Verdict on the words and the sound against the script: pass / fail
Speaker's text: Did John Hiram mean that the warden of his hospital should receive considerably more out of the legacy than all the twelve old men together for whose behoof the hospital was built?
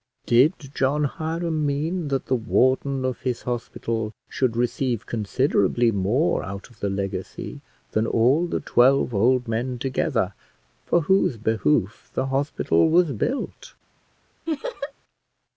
fail